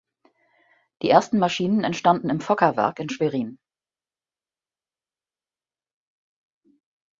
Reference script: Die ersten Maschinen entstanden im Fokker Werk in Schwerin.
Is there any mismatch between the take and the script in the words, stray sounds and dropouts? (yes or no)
no